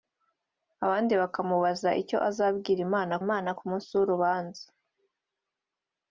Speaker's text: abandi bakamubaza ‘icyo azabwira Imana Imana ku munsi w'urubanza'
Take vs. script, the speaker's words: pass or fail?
pass